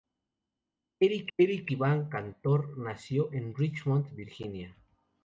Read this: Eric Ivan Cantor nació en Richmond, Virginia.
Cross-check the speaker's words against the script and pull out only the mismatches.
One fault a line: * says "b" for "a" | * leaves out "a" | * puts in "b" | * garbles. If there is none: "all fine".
* puts in "eric"